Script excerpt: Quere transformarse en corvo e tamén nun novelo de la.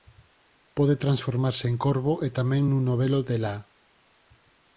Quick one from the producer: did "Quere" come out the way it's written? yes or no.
no